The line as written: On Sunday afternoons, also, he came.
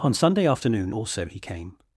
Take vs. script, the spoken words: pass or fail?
fail